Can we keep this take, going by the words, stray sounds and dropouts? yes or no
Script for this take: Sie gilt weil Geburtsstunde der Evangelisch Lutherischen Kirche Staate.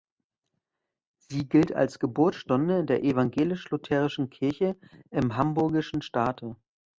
no